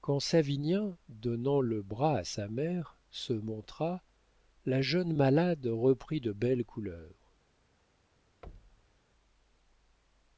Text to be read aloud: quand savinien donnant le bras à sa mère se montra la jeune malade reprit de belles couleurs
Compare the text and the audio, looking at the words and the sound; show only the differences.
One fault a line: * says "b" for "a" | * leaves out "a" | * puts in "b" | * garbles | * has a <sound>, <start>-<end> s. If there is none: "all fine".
* has a thud, 8.4-9.0 s